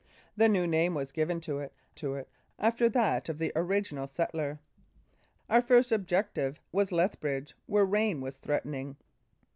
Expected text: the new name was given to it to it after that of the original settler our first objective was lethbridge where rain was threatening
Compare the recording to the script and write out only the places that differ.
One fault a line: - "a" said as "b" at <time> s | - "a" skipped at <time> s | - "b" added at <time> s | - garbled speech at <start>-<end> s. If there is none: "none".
none